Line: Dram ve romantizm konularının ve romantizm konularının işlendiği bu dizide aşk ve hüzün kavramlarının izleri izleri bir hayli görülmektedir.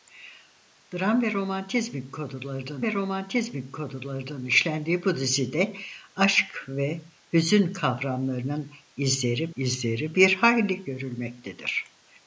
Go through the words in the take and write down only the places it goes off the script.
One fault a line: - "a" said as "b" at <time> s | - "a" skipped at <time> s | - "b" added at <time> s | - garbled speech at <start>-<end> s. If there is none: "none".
none